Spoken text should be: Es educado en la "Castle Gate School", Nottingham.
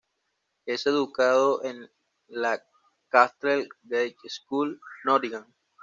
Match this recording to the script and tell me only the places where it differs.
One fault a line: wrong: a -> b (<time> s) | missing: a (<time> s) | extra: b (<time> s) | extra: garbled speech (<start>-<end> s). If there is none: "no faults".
no faults